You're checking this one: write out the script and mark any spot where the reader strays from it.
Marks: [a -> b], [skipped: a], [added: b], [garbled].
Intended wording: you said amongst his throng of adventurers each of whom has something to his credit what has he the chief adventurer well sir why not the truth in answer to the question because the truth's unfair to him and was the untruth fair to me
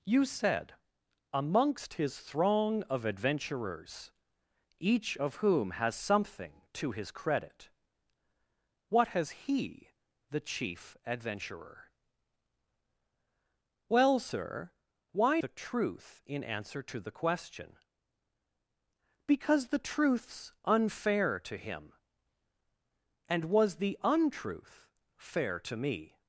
you said amongst his throng of adventurers each of whom has something to his credit what has he the chief adventurer well sir why [skipped: not] the truth in answer to the question because the truth's unfair to him and was the untruth fair to me